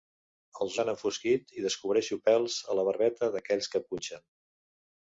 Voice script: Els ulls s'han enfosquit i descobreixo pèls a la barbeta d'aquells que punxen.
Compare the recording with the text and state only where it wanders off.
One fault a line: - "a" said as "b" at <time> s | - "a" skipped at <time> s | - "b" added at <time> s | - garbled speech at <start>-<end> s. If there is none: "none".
- "ulls" skipped at 0.8 s